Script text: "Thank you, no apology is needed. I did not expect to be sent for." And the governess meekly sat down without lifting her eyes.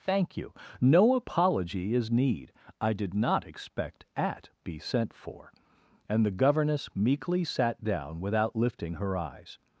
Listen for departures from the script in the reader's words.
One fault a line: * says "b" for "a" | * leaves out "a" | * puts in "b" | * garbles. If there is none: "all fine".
* says "need" for "needed"
* says "at" for "to"